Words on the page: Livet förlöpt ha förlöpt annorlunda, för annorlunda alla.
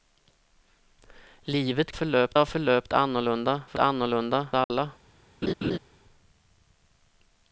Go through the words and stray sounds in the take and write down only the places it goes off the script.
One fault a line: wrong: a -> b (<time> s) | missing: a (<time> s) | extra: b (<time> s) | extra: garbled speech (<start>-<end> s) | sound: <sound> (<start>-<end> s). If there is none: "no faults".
sound: dropout (4.6-4.7 s)
sound: laugh (5.4-5.8 s)